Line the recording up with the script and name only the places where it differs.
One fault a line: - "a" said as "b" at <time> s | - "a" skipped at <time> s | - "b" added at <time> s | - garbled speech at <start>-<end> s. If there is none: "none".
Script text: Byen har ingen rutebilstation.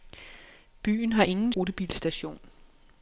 none